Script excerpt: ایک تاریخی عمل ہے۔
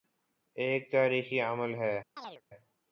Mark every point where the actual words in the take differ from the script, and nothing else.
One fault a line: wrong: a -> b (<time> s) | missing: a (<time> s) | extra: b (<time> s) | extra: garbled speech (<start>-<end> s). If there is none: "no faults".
no faults